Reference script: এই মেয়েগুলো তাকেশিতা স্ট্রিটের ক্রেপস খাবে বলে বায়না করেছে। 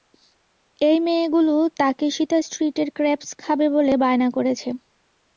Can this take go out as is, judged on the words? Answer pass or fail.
pass